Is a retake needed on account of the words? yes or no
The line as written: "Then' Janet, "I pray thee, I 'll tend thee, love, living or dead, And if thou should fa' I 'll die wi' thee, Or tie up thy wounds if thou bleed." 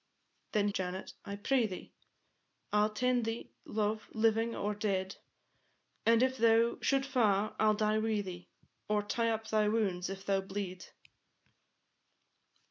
no